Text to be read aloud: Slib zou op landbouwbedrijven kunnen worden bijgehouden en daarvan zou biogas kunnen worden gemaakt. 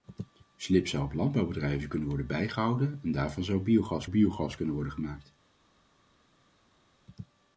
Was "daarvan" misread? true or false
false